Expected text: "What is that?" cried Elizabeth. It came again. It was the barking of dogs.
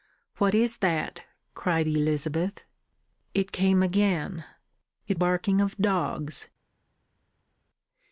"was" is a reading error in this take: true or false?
true